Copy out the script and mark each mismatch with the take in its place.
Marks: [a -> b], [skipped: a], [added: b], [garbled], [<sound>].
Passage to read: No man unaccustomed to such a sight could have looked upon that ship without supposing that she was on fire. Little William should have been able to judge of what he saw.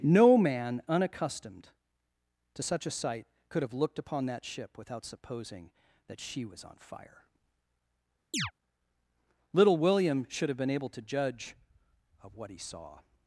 No man unaccustomed to such a sight could have looked upon that ship without supposing that she was on fire. [chirp] Little William should have been able to judge of what he saw.